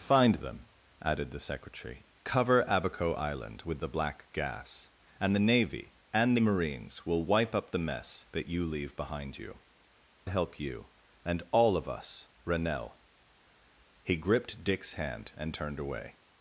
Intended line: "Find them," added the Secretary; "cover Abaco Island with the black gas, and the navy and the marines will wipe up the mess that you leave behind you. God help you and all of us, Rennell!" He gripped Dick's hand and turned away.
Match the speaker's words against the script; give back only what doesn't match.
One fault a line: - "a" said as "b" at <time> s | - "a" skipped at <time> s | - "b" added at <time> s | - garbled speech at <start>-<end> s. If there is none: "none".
- "God" skipped at 9.6 s